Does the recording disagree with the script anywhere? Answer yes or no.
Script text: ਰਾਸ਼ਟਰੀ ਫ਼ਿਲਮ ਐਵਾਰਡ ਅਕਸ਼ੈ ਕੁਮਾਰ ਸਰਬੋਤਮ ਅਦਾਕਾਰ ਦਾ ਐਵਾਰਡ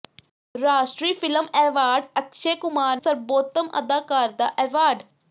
no